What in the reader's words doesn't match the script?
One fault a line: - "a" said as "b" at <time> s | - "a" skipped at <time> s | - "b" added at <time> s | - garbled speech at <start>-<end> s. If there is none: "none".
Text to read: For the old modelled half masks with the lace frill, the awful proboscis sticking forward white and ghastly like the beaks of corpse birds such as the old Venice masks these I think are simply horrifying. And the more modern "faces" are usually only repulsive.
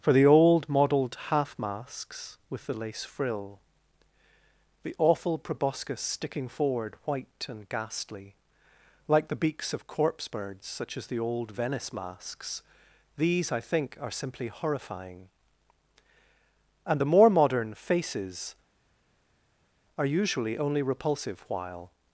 - "While" added at 21.5 s